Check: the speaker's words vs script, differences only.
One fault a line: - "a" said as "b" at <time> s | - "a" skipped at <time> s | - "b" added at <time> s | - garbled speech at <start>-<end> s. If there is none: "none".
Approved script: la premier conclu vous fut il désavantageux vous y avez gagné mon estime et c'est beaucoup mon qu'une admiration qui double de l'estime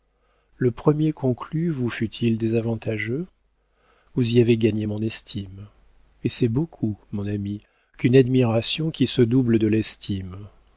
- "la" said as "le" at 0.6 s
- "ami" added at 7.3 s
- "se" added at 9.1 s